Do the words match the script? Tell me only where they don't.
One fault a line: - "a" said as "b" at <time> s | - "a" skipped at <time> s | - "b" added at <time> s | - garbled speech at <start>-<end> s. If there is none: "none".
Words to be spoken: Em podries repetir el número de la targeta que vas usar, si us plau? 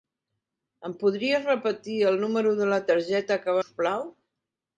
- "vas usar si" skipped at 3.6 s